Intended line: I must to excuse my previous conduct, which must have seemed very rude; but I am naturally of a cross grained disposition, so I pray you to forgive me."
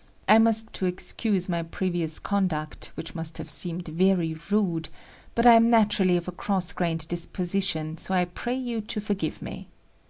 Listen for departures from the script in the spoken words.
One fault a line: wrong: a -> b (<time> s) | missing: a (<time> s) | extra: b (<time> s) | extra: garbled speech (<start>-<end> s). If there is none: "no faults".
no faults